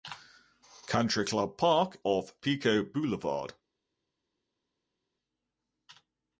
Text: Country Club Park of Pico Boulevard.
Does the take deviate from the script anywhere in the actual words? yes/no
no